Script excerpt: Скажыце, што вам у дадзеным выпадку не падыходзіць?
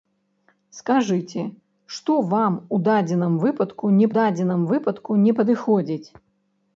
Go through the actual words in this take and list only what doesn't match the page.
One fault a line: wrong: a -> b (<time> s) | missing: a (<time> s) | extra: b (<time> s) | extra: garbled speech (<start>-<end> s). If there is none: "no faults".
extra: дадзеным выпадку не (4.2 s)